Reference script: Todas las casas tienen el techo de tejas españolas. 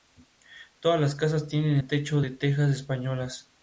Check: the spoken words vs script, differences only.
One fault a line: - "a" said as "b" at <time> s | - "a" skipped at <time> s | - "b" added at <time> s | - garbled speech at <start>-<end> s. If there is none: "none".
none